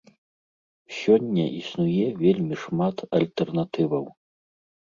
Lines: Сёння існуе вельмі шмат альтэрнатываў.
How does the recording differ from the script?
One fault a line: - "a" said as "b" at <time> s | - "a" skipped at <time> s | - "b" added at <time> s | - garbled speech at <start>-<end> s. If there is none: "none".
none